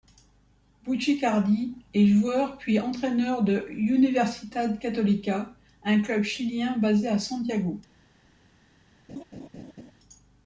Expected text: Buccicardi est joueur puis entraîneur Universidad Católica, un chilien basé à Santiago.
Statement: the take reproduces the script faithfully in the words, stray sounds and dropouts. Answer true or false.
false